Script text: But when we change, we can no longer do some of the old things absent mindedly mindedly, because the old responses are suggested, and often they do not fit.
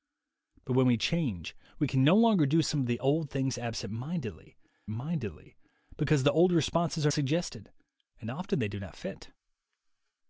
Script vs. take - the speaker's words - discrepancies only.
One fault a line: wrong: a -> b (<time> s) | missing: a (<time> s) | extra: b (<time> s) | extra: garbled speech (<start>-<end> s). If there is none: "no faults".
no faults